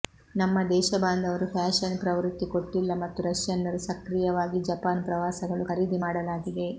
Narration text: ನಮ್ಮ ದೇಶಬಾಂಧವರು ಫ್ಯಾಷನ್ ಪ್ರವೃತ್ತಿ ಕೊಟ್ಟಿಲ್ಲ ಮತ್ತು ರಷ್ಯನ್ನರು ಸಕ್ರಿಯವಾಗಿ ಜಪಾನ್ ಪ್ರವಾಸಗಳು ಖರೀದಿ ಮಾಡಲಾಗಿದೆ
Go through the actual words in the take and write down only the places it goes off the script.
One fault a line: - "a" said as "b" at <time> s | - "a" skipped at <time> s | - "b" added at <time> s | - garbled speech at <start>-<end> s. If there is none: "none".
none